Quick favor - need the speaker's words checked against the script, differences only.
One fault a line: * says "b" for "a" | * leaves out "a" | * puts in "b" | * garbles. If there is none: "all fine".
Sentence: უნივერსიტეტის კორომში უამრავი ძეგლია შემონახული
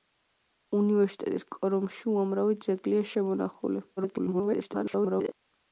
* garbles